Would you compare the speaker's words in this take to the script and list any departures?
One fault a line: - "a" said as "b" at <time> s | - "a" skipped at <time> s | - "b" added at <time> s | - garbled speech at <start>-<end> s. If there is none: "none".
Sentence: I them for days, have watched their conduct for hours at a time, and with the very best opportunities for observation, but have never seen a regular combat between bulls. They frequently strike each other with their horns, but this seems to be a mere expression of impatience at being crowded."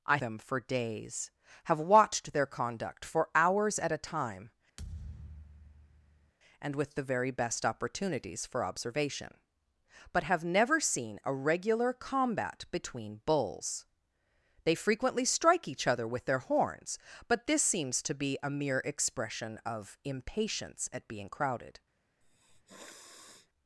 none